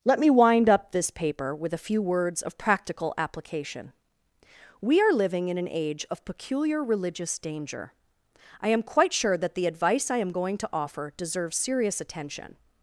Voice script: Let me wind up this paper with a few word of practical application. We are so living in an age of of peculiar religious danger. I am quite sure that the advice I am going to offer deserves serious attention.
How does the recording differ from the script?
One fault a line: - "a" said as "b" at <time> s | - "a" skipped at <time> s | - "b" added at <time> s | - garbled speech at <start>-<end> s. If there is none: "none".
- "word" said as "words" at 2.0 s
- "so" skipped at 5.1 s
- "of" skipped at 6.2 s